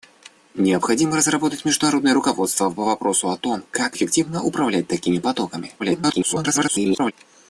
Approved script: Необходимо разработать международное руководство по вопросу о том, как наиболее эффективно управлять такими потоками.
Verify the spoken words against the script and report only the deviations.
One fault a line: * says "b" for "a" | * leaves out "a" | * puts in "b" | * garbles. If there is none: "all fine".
* leaves out "наиболее"
* garbles